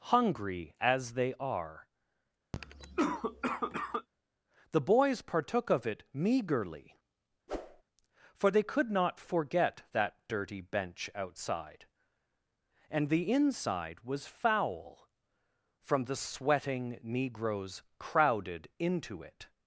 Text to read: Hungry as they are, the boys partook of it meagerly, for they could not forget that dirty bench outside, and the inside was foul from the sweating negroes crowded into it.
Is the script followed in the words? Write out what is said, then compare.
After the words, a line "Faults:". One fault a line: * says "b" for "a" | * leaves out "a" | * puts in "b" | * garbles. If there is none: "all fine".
Hungry as they are, the boys partook of it meagerly, for they could not forget that dirty bench outside, and the inside was foul from the sweating negroes crowded into it.
Faults:
all fine